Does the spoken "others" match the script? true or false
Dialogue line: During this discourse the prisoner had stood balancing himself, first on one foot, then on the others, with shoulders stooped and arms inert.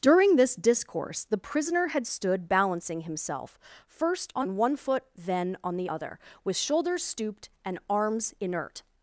false